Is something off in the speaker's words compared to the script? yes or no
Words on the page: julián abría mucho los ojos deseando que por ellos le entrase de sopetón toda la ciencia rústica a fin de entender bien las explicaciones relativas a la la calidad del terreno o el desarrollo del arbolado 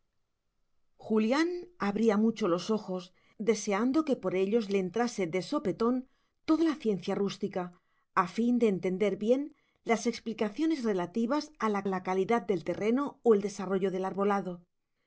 no